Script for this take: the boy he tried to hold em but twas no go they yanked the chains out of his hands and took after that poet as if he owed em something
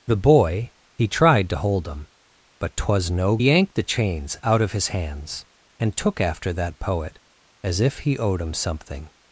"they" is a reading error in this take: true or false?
true